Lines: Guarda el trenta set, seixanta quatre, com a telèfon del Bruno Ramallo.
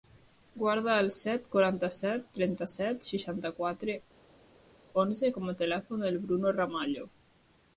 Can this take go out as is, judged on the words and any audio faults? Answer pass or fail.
fail